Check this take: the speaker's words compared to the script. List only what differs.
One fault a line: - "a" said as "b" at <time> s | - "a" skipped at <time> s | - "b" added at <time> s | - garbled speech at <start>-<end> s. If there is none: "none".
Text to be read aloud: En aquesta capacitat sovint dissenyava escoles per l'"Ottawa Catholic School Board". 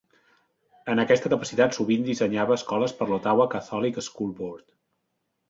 none